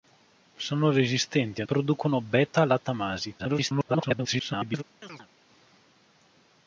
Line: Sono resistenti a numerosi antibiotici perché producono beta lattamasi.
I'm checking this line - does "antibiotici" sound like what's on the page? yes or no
no